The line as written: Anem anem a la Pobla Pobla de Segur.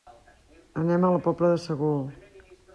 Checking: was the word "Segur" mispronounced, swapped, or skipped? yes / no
no